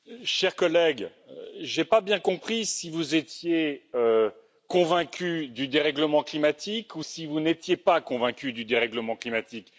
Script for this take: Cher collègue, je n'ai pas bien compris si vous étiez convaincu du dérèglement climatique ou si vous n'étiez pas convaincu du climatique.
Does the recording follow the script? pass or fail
fail